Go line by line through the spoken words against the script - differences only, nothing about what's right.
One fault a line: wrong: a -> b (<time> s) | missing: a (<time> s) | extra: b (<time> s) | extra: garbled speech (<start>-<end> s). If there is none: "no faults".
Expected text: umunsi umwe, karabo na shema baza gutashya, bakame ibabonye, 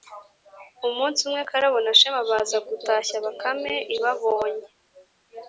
no faults